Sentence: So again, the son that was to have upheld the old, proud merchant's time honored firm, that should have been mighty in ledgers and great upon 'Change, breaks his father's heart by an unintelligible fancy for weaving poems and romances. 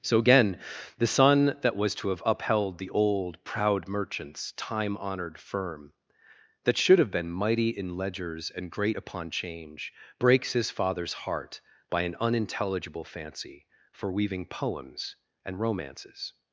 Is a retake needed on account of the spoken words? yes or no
no